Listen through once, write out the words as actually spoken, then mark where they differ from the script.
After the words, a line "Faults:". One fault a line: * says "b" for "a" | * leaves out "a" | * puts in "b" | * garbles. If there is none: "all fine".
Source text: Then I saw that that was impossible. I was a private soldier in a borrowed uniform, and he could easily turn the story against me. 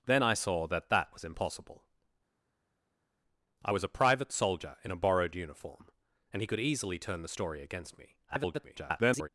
Then I saw that that was impossible. I was a private soldier in a borrowed uniform, and he could easily turn the story against me. [garbled]
Faults:
* garbles